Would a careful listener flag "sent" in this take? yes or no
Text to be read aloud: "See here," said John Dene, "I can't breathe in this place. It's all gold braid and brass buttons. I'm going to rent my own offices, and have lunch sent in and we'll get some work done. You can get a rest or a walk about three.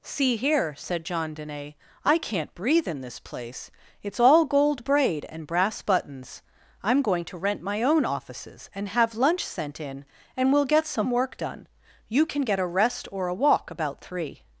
no